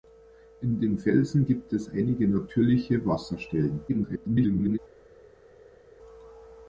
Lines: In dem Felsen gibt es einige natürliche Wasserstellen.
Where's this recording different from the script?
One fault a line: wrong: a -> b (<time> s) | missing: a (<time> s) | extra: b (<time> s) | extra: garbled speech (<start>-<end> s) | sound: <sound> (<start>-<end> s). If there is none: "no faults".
extra: garbled speech (3.9-4.8 s)